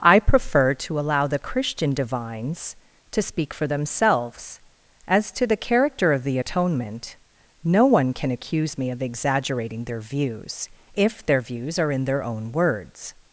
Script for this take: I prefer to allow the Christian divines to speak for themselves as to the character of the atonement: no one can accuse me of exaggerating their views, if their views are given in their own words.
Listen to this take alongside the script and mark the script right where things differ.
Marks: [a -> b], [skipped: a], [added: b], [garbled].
I prefer to allow the Christian divines to speak for themselves as to the character of the atonement: no one can accuse me of exaggerating their views, if their views are [skipped: given] in their own words.